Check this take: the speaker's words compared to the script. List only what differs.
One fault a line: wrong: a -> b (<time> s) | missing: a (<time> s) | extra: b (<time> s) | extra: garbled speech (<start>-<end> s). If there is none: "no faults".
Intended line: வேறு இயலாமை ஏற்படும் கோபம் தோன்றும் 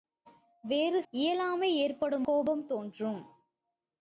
no faults